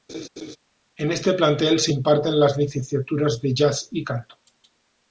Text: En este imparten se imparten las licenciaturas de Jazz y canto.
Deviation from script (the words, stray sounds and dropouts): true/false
true